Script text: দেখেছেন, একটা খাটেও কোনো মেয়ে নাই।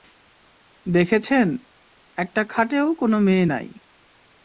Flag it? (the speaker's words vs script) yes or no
no